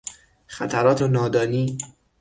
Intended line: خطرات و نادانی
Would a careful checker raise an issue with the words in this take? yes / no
no